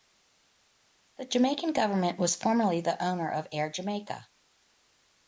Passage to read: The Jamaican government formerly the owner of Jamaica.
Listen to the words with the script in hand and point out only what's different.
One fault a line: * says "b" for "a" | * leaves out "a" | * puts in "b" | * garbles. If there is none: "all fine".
* puts in "was"
* puts in "Air"